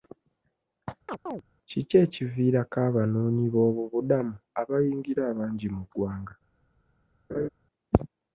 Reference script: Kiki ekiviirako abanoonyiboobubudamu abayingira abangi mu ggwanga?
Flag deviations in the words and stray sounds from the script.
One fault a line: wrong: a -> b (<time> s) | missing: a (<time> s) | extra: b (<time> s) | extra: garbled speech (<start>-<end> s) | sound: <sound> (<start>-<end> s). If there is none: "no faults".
sound: chirp (1.1-1.4 s)
sound: laugh (7.3-7.5 s)